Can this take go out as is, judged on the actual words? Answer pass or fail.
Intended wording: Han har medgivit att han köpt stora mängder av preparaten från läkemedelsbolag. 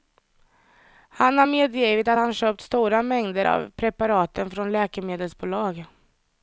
pass